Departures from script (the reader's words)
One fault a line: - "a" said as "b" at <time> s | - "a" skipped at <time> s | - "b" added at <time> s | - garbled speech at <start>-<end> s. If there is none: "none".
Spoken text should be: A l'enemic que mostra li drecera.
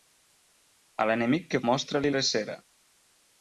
none